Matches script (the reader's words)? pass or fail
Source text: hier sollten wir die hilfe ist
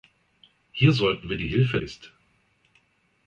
pass